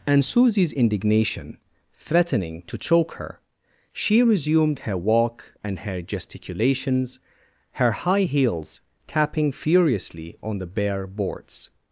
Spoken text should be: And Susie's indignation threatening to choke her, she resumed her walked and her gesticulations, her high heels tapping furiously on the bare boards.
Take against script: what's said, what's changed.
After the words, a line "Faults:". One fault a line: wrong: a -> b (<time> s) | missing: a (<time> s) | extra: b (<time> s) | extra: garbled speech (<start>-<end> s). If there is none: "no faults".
And Susie's indignation threatening to choke her, she resumed her walk and her gesticulations, her high heels tapping furiously on the bare boards.
Faults:
wrong: walked -> walk (5.0 s)